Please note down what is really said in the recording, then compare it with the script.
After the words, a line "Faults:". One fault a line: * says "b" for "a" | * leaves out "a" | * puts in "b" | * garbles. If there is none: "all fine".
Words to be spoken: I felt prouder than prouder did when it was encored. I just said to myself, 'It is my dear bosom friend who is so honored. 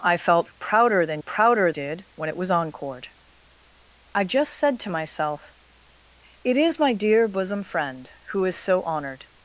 I felt prouder than prouder did when it was encored. I just said to myself, 'It is my dear bosom friend who is so honored.
Faults:
all fine